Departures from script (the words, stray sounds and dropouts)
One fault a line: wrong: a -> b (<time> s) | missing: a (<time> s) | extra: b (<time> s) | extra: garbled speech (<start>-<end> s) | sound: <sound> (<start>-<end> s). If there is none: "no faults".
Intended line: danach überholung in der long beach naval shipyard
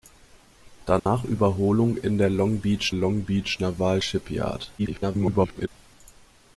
sound: dropout (1.0-1.1 s)
extra: long beach (2.9 s)
extra: garbled speech (4.8-5.7 s)